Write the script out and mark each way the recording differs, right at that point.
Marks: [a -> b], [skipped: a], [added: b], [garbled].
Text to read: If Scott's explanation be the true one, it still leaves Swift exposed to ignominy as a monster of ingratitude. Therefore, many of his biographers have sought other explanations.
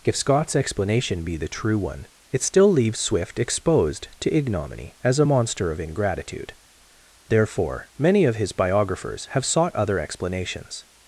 If Scott's explanation be the true one, it still leaves Swift exposed to ignominy as a monster of ingratitude. Therefore, many of his biographers have sought other explanations.